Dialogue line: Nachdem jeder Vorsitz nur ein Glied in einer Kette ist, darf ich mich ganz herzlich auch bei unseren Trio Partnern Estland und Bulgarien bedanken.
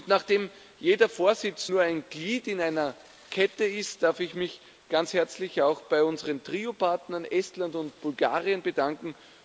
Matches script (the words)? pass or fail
pass